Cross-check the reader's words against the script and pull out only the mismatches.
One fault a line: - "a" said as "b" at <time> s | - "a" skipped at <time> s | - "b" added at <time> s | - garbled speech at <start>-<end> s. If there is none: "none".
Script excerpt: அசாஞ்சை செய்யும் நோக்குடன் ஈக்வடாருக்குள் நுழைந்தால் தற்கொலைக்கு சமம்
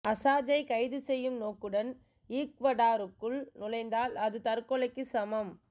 - "கைது" added at 0.7 s
- "அது" added at 4.2 s